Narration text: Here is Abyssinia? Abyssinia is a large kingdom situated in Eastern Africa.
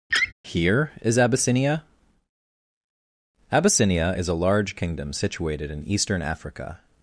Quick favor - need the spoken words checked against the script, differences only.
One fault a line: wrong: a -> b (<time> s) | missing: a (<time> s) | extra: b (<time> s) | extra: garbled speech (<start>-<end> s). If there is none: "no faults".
no faults